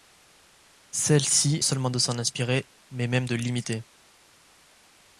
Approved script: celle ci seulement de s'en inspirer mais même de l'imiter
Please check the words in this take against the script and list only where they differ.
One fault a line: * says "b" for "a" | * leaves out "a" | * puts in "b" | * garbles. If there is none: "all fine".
all fine